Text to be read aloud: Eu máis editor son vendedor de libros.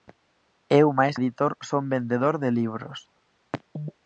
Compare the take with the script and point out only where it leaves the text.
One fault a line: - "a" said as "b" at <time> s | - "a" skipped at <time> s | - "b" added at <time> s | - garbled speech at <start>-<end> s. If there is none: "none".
none